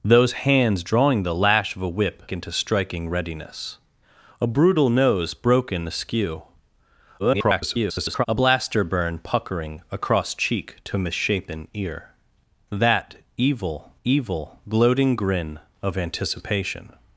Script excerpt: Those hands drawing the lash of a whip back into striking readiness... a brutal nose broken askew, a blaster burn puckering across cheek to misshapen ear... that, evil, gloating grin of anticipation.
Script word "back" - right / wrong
wrong